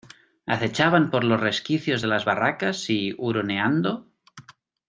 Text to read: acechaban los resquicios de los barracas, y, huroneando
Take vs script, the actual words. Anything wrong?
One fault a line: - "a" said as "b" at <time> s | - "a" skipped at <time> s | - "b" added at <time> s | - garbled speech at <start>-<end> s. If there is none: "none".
- "por" added at 1.1 s
- "los" said as "las" at 2.1 s